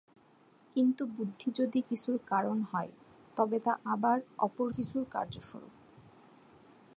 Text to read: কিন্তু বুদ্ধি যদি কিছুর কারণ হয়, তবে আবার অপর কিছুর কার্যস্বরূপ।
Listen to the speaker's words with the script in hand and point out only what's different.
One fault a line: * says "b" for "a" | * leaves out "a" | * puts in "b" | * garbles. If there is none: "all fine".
* puts in "তা"